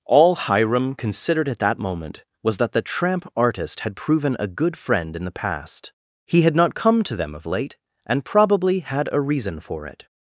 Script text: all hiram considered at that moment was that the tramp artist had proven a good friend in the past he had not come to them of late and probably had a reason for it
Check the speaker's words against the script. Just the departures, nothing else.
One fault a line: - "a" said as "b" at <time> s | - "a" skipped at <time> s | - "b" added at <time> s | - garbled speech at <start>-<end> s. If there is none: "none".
none